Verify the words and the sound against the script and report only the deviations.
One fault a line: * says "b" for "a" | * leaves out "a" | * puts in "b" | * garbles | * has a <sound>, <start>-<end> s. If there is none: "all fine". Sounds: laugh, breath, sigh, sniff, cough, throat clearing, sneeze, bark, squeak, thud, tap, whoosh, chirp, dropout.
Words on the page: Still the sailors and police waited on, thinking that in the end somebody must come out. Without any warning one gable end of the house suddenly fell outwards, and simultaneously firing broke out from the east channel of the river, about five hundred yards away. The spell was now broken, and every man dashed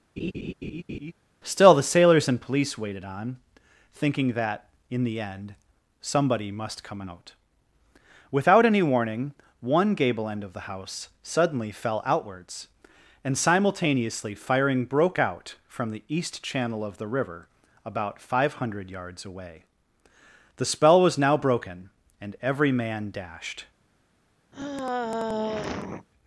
* has a laugh, 0.2-1.1 s
* has a sigh, 24.5-26.1 s